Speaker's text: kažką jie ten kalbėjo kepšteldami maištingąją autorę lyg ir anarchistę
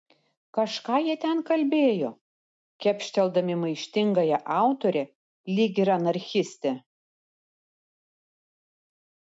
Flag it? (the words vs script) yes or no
no